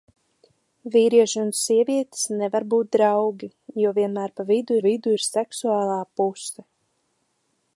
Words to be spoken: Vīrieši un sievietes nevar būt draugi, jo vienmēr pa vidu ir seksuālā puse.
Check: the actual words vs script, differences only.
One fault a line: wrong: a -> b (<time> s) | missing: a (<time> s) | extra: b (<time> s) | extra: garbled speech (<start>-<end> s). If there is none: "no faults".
extra: vidu (4.8 s)